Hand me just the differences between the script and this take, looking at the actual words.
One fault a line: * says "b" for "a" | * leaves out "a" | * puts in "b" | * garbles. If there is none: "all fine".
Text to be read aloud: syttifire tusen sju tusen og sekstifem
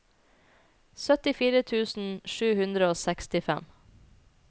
* says "hundre" for "tusen"